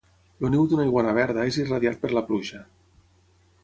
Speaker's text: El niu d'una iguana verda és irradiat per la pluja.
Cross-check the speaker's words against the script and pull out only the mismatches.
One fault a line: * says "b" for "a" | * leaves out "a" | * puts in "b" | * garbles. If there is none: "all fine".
all fine